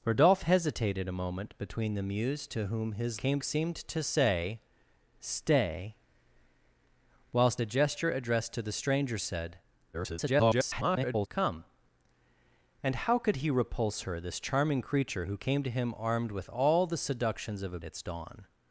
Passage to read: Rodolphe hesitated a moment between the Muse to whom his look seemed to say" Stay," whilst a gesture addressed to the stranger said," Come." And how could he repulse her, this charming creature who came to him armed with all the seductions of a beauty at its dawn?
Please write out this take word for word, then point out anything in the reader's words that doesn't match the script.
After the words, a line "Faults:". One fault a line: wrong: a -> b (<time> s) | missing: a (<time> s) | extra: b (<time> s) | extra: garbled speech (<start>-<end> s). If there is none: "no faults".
Rodolphe hesitated a moment between the Muse to whom his came seemed to say" Stay," whilst a gesture addressed to the stranger said," [garbled] Come." And how could he repulse her, this charming creature who came to him armed with all the seductions of a its dawn?
Faults:
wrong: look -> came (3.1 s)
extra: garbled speech (9.9-11.3 s)
missing: beauty at (17.8 s)